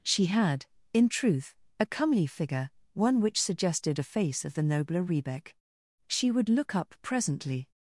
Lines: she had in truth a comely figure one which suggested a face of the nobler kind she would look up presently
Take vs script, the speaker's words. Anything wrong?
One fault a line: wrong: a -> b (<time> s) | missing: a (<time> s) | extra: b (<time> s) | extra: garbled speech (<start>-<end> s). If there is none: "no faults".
wrong: kind -> rebek (5.0 s)